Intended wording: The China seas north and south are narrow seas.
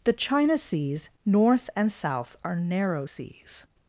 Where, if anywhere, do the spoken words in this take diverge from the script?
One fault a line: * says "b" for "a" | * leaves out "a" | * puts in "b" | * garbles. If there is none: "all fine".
all fine